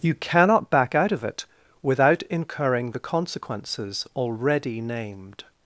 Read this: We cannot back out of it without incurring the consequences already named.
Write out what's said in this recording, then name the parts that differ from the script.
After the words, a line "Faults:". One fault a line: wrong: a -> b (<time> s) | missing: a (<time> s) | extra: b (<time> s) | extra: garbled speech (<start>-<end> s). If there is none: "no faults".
You cannot back out of it without incurring the consequences already named.
Faults:
wrong: We -> You (0.0 s)